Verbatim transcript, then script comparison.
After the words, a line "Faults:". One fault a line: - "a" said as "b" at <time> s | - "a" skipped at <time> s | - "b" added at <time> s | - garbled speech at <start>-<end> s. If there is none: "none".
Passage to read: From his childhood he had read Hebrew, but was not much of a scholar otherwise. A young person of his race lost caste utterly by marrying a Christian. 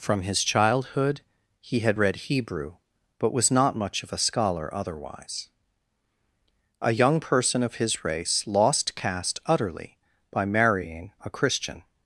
From his childhood he had read Hebrew, but was not much of a scholar otherwise. A young person of his race lost caste utterly by marrying a Christian.
Faults:
none